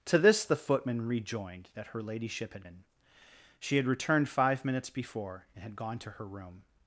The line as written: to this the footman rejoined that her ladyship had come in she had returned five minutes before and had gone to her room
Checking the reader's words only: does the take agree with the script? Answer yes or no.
no